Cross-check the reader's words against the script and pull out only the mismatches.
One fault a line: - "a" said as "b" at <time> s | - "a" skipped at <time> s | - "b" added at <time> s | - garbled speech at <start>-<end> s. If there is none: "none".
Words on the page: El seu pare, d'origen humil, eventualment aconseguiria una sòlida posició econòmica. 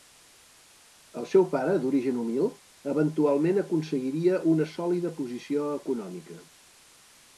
none